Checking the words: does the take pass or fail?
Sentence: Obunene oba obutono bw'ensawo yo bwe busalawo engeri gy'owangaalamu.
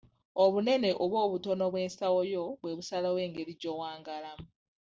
pass